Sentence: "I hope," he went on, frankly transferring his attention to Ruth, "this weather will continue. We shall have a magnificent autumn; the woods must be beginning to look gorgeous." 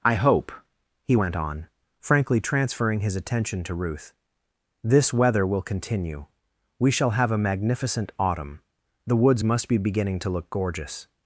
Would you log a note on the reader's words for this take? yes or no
no